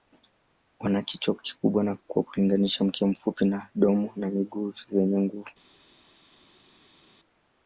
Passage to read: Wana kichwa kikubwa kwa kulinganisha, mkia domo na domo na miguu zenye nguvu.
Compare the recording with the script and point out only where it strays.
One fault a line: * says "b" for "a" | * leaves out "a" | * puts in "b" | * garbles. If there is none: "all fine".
* says "mfupi" for "domo"